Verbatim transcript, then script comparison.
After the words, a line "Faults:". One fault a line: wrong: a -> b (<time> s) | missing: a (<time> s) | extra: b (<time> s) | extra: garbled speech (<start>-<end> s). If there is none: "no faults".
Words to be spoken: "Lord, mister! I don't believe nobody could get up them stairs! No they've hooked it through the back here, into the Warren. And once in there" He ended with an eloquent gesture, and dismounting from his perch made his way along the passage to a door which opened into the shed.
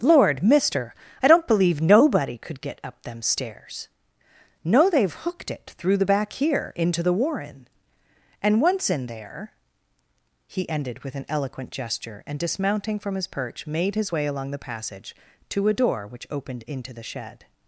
"Lord, mister! I don't believe nobody could get up them stairs! No they've hooked it through the back here, into the Warren. And once in there" He ended with an eloquent gesture, and dismounting from his perch made his way along the passage to a door which opened into the shed.
Faults:
no faults